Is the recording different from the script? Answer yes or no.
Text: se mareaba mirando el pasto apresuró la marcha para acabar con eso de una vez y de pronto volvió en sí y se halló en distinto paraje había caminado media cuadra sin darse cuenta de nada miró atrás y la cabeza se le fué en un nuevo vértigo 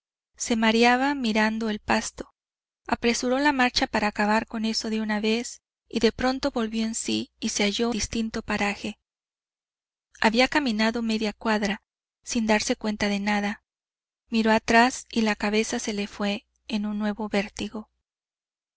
yes